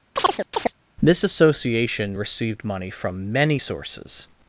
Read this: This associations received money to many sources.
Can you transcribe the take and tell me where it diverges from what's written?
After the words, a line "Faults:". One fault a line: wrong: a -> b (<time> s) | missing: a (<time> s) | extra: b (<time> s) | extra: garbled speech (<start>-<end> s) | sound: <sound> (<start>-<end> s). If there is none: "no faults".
This association received money from many sources.
Faults:
sound: chirp (0.2-0.7 s)
wrong: associations -> association (1.2 s)
wrong: to -> from (2.9 s)